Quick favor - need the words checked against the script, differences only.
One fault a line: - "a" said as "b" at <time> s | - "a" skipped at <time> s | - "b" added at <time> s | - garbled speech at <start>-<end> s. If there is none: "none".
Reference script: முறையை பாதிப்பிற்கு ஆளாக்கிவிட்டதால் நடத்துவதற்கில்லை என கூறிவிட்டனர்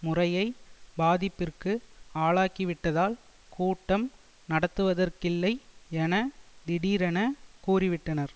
- "கூட்டம்" added at 3.5 s
- "திடீரென" added at 6.7 s